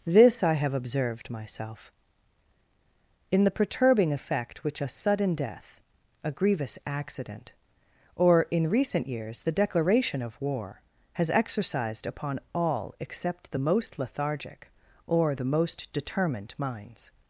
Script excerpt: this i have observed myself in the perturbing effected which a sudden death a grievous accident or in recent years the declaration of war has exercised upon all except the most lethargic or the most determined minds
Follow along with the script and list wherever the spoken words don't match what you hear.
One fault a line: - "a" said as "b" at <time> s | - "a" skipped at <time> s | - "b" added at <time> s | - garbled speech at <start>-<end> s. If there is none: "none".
- "effected" said as "effect" at 4.1 s